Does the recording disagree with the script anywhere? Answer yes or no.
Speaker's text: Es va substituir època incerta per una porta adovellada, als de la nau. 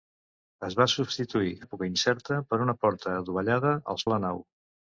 no